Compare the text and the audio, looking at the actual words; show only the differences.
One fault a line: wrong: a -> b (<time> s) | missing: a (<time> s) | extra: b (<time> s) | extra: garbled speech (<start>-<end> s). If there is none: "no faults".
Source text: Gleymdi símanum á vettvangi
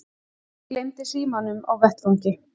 no faults